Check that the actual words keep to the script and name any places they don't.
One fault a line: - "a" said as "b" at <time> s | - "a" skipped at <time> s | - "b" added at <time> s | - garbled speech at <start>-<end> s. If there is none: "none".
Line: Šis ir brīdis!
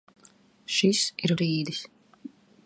none